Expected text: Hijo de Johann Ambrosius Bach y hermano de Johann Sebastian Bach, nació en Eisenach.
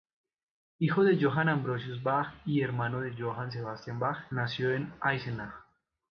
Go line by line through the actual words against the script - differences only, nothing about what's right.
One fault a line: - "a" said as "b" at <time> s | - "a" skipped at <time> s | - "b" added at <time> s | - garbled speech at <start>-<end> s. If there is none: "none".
none